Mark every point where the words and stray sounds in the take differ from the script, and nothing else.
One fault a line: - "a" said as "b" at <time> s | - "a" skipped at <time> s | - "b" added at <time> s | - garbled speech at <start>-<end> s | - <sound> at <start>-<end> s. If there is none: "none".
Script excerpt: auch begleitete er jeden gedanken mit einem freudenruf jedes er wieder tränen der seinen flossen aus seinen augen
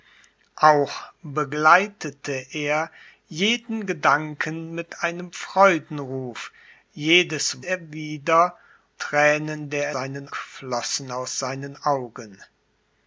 none